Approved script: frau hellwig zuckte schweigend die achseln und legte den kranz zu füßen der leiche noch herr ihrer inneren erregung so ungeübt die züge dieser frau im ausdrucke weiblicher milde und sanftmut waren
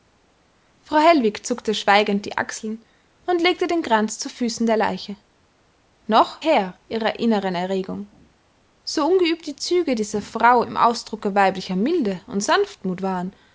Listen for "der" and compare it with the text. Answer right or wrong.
right